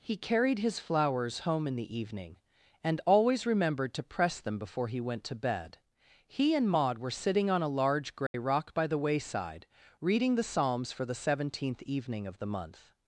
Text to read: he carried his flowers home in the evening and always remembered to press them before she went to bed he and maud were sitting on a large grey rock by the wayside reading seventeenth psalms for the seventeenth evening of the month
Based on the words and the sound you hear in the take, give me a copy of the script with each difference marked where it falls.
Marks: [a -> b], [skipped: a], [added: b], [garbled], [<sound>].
he carried his flowers home in the evening and always remembered to press them before [she -> he] went to bed he and maud were sitting on a large grey [dropout] rock by the wayside reading [seventeenth -> the] psalms for the seventeenth evening of the month